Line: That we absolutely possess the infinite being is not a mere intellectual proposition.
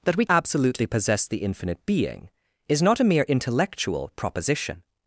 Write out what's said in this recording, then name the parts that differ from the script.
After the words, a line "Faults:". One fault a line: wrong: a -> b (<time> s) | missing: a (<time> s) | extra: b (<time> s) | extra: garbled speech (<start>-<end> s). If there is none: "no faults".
That we absolutely possess the infinite being is not a mere intellectual proposition.
Faults:
no faults